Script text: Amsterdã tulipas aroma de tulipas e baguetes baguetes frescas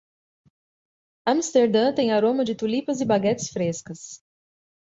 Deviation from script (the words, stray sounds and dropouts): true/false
true